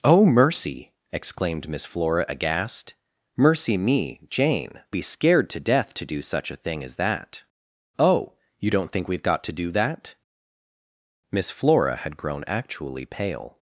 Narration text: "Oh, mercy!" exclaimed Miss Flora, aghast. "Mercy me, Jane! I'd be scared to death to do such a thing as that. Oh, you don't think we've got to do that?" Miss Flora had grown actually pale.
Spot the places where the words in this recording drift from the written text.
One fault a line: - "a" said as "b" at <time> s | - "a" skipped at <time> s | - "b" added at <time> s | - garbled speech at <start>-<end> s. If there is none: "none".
- "I'd" skipped at 4.8 s